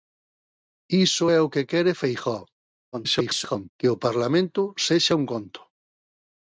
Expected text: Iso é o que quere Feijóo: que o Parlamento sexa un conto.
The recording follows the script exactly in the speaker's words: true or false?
false